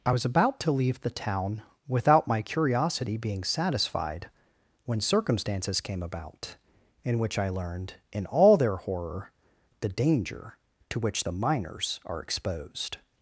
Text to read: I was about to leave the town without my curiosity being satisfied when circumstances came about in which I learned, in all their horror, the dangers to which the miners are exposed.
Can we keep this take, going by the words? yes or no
no